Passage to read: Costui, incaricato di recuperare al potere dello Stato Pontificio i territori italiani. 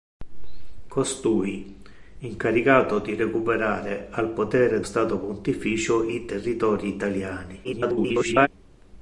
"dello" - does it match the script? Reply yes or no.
no